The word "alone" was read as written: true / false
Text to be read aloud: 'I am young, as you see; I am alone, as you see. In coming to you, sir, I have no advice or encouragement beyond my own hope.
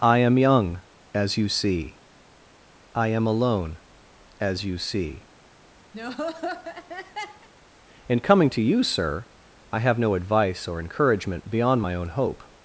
true